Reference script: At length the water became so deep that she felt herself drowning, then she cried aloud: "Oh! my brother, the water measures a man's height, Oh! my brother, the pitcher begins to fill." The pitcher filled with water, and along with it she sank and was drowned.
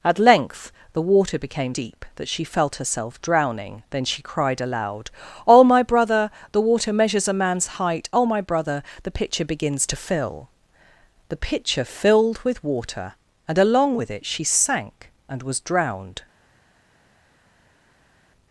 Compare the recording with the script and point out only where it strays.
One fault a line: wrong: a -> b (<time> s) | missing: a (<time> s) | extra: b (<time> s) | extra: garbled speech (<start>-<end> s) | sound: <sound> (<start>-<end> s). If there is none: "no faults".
missing: so (1.8 s)